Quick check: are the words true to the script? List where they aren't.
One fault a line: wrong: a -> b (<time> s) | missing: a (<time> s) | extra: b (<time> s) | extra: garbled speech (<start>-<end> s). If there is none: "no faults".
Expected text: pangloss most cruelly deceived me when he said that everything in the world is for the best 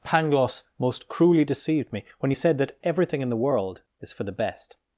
no faults